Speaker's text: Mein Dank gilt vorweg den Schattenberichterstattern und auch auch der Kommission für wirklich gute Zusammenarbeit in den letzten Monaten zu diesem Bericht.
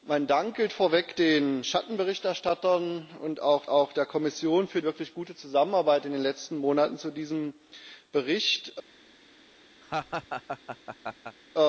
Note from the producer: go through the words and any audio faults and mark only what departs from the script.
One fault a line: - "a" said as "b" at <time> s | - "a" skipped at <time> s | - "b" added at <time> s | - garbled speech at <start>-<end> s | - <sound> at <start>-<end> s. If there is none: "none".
- laugh at 9.8-11.4 s